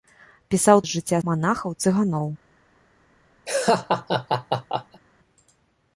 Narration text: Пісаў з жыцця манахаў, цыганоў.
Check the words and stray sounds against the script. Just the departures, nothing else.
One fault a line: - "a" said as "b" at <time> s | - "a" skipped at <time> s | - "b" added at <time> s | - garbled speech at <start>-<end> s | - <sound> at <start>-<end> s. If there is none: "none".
- laugh at 3.5-5.0 s